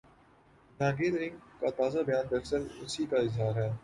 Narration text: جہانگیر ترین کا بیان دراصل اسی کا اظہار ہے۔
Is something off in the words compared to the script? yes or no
yes